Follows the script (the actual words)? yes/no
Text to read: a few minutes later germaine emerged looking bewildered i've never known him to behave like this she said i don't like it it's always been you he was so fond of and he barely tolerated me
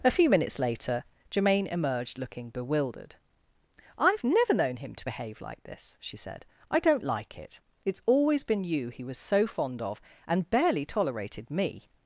no